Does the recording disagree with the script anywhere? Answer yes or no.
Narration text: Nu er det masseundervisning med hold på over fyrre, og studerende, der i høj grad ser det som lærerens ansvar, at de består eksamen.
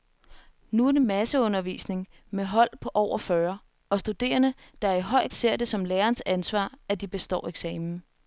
yes